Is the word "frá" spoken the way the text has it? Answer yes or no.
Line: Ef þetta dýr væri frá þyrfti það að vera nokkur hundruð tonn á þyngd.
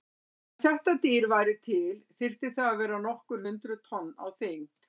no